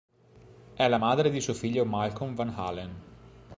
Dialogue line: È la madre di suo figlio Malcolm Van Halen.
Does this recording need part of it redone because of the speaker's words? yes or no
no